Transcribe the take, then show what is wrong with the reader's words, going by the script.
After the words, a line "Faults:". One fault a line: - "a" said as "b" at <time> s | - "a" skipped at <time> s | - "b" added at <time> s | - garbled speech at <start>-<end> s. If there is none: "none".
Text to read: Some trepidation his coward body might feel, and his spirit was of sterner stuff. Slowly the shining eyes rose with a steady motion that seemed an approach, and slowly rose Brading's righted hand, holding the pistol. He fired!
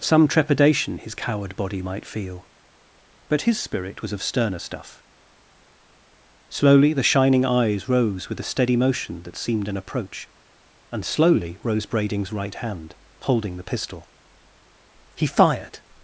Some trepidation his coward body might feel, but his spirit was of sterner stuff. Slowly the shining eyes rose with a steady motion that seemed an approach, and slowly rose Brading's right hand, holding the pistol. He fired!
Faults:
- "and" said as "but" at 3.3 s
- "righted" said as "right" at 12.3 s